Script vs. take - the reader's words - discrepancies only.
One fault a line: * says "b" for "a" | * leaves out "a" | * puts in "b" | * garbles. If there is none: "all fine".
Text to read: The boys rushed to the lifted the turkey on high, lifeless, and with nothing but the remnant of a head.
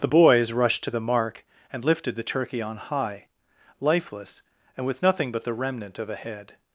* puts in "mark and"